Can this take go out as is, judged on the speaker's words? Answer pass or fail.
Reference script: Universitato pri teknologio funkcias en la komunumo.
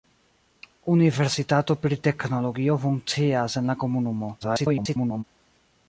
fail